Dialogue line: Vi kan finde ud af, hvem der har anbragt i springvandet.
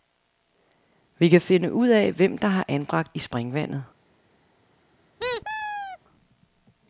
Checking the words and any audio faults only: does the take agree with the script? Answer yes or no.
no